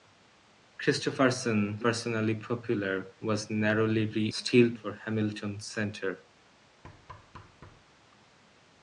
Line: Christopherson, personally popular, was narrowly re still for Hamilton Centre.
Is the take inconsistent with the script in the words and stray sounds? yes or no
yes